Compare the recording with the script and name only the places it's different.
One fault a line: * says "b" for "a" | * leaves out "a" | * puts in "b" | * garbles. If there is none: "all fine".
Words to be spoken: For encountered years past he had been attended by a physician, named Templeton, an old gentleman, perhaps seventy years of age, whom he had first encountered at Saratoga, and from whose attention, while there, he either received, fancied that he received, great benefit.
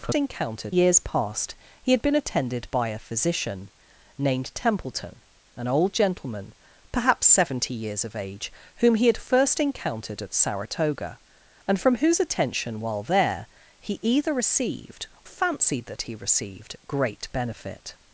all fine